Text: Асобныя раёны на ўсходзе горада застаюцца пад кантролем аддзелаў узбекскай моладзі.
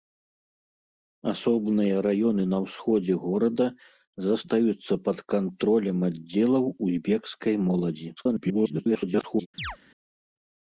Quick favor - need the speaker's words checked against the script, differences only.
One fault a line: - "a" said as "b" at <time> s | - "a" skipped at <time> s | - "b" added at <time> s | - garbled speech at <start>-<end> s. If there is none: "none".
- garbled speech at 8.2-9.5 s